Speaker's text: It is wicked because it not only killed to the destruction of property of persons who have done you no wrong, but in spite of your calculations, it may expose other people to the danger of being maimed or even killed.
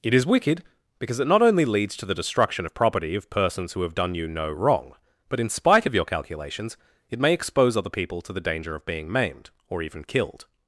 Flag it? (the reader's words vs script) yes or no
yes